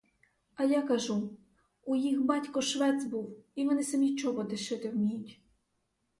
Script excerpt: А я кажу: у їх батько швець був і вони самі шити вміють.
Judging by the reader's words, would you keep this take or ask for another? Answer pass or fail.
fail